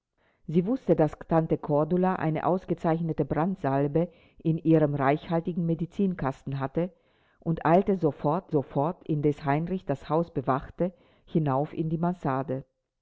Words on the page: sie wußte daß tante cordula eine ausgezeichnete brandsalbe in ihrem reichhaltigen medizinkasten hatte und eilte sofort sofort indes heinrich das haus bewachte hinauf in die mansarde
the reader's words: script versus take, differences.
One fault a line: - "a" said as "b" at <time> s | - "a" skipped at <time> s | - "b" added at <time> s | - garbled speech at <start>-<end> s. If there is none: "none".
none